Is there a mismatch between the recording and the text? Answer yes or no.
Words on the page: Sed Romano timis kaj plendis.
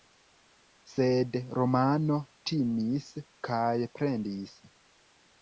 no